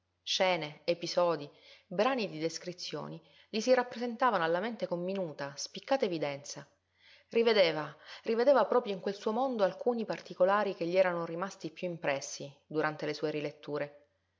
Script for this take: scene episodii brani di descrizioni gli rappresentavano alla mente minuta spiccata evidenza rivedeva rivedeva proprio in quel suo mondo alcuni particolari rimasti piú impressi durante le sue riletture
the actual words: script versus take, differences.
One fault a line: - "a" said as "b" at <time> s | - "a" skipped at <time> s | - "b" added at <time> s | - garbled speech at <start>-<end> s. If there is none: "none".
- "si" added at 3.6 s
- "con" added at 4.8 s
- "che gli erano" added at 10.7 s